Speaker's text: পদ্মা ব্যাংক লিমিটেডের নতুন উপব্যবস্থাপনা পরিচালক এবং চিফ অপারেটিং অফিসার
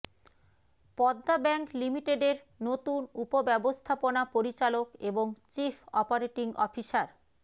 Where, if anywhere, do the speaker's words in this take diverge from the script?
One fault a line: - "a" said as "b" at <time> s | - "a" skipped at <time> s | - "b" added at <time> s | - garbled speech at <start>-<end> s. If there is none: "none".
none